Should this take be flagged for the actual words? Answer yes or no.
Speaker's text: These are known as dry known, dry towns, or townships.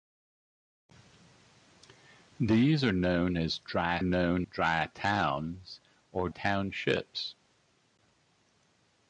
no